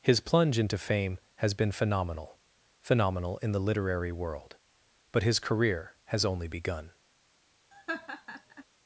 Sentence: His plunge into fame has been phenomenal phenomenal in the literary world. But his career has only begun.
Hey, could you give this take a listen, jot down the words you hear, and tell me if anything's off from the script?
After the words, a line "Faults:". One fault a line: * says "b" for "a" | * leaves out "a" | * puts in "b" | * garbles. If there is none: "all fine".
His plunge into fame has been phenomenal phenomenal in the literary world. But his career has only begun.
Faults:
all fine